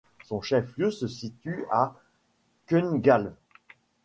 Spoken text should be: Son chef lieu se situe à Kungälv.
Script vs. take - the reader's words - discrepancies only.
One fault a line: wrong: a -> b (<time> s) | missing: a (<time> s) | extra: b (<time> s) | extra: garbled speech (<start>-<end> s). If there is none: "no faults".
no faults